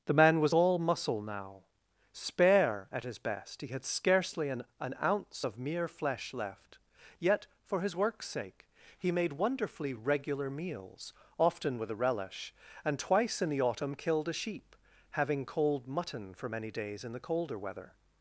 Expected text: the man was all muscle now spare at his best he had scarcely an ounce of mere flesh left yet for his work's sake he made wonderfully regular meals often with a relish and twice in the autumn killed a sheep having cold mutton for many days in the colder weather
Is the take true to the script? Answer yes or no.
no